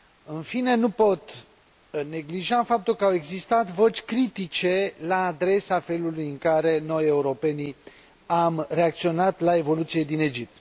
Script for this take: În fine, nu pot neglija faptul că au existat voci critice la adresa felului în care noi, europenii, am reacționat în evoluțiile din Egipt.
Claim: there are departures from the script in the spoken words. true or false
true